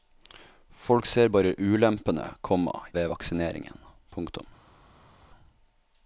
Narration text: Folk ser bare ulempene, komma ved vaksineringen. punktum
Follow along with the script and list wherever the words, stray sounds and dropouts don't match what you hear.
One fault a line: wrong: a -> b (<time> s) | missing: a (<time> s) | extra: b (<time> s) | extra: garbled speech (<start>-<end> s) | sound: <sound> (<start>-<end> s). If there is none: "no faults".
no faults